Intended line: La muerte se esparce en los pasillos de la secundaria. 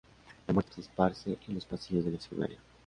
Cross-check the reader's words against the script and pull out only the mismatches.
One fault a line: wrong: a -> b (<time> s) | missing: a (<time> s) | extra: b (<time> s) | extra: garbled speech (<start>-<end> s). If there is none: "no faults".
no faults